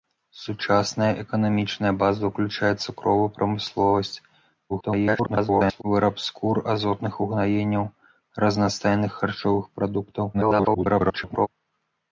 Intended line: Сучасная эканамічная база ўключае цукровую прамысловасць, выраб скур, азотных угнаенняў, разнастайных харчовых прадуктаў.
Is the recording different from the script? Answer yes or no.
yes